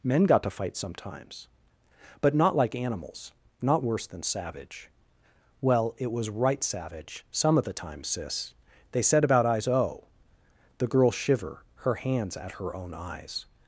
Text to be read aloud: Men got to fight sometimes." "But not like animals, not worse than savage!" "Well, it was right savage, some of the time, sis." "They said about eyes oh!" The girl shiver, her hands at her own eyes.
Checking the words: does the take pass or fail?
pass